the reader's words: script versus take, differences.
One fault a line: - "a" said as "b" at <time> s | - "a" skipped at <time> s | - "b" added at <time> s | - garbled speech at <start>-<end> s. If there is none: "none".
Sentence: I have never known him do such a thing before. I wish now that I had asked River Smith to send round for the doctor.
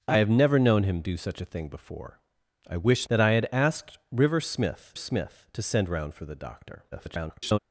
- "now" skipped at 3.1 s
- "Smith" added at 4.9 s
- garbled speech at 6.9-7.6 s